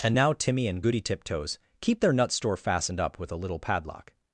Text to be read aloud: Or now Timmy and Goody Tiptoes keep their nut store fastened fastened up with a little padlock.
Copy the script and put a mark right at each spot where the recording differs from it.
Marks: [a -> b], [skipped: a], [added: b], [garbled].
[Or -> And] now Timmy and Goody Tiptoes keep their nut store fastened [skipped: fastened] up with a little padlock.